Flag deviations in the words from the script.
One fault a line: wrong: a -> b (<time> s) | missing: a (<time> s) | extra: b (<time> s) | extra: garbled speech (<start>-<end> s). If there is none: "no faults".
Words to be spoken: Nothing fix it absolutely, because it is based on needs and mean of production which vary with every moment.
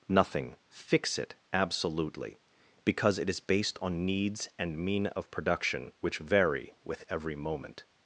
no faults